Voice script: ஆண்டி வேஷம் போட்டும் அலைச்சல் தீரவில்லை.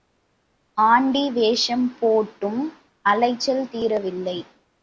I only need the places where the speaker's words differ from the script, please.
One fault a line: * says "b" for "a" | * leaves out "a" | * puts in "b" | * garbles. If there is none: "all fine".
all fine